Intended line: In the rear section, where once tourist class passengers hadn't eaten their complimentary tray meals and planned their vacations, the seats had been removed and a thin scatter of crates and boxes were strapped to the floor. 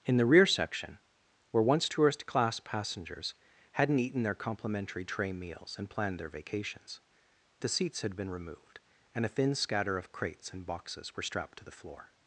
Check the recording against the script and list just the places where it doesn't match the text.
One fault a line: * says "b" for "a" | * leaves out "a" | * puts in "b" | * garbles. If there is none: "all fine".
all fine